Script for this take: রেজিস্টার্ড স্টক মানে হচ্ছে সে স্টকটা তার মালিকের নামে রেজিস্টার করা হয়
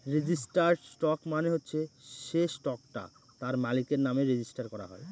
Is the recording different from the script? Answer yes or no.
no